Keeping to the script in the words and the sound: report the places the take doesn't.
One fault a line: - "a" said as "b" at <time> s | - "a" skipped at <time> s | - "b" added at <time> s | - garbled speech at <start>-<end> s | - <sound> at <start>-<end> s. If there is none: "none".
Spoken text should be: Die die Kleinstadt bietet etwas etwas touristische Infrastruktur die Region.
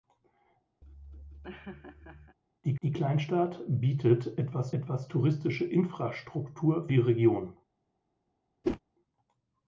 - laugh at 0.8-2.4 s
- whoosh at 8.6-8.8 s